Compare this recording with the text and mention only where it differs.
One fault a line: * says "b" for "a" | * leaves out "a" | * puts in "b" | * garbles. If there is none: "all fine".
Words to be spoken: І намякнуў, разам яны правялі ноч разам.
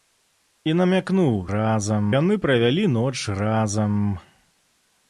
all fine